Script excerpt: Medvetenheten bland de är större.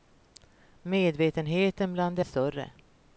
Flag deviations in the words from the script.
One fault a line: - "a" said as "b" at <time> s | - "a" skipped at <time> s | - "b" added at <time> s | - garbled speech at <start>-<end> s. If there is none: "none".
none